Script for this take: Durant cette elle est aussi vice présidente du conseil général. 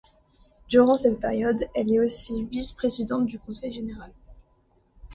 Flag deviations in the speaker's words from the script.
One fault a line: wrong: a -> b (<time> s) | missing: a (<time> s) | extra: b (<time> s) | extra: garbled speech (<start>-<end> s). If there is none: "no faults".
extra: période (1.2 s)